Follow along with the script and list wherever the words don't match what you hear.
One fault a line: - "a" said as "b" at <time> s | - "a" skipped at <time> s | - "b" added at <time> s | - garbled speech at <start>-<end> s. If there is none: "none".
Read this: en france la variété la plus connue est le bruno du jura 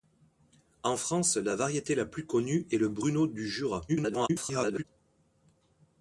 - garbled speech at 3.9-4.8 s